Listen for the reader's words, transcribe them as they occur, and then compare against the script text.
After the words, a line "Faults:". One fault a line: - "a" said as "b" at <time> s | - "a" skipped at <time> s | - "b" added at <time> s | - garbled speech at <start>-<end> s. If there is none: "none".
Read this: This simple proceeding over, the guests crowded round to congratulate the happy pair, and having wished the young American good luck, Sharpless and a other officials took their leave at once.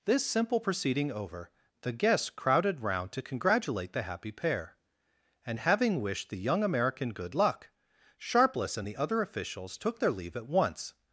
This simple proceeding over, the guests crowded round to congratulate the happy pair, and having wished the young American good luck, Sharpless and the other officials took their leave at once.
Faults:
- "a" said as "the" at 8.9 s